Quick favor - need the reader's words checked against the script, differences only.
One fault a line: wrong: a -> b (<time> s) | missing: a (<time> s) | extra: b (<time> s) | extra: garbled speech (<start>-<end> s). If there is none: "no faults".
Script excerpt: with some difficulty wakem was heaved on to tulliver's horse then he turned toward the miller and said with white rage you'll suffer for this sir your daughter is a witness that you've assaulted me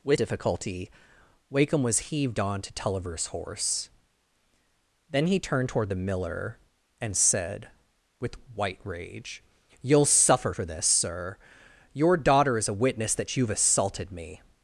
missing: some (0.2 s)